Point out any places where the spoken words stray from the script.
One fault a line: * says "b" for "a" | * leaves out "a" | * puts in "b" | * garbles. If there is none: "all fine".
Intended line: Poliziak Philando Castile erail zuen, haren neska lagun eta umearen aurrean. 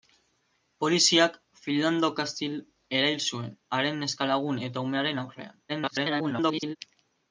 * garbles